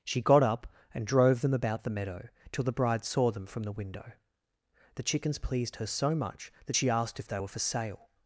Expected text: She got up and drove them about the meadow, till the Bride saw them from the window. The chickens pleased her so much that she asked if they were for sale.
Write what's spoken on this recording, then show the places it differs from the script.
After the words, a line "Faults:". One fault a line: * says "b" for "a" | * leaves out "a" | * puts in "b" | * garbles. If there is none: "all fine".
She got up and drove them about the meadow, till the Bride saw them from the window. The chickens pleased her so much that she asked if they were for sale.
Faults:
all fine